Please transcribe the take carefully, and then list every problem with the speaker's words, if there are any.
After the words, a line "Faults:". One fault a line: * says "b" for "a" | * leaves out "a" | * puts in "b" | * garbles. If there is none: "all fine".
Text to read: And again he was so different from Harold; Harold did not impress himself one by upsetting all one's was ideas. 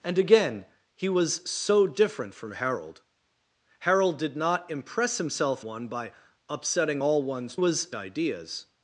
And again he was so different from Harold; Harold did not impress himself one by upsetting all one's was ideas.
Faults:
all fine